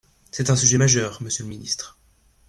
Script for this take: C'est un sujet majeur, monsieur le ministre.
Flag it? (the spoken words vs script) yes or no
no